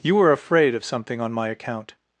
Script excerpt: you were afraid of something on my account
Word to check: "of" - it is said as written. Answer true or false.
true